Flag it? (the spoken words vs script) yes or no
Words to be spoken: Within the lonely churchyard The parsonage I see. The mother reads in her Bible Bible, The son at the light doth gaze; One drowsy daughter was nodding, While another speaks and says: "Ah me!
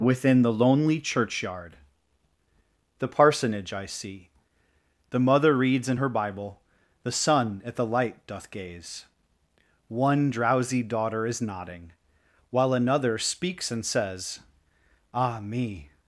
yes